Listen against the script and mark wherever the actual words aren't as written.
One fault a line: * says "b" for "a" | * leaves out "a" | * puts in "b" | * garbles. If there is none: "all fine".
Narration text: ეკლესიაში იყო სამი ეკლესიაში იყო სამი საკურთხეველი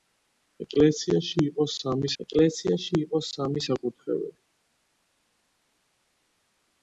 all fine